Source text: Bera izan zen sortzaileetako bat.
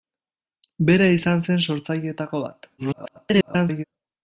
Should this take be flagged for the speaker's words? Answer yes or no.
yes